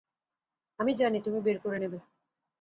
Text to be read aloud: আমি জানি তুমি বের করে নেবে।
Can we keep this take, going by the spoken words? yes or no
yes